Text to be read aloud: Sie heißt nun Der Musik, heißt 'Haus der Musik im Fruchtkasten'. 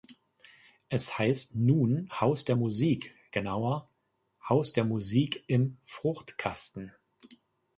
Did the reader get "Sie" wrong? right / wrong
wrong